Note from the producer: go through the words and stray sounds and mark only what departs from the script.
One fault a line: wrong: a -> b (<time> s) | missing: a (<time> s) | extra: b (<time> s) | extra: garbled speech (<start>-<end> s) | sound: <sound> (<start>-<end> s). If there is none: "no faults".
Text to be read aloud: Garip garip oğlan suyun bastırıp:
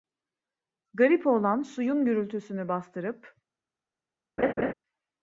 missing: garip (1.3 s)
extra: gürültüsünü (2.0 s)
sound: laugh (4.4-4.7 s)